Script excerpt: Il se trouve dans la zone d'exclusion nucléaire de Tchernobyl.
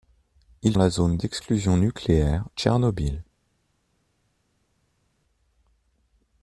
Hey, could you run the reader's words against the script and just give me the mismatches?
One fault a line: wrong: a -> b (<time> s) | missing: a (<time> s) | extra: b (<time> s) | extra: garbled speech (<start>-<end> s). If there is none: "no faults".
missing: se trouve dans (0.8 s)
missing: de (2.5 s)